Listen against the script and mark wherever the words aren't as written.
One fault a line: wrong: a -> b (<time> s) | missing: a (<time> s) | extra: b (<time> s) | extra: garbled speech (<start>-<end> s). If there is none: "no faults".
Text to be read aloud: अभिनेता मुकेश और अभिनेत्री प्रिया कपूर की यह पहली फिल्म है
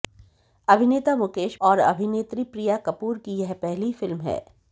no faults